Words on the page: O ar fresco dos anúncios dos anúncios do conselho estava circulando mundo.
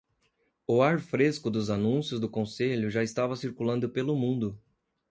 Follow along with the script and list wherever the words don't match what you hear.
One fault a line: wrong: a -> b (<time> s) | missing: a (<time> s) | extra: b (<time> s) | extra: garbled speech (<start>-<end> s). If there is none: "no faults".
missing: dos anúncios (2.2 s)
extra: já (2.9 s)
extra: pelo (3.9 s)